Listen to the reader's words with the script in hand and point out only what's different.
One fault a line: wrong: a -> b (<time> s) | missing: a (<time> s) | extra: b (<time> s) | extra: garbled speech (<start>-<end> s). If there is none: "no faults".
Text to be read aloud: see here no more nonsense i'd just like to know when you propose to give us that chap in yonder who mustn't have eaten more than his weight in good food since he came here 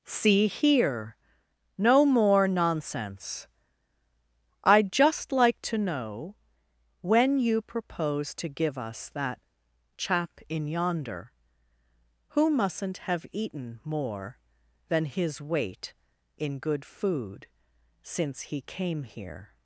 no faults